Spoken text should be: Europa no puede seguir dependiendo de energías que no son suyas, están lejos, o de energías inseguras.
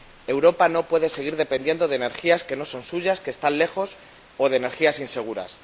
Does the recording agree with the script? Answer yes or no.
no